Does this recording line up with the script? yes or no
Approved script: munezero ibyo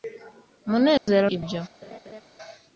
yes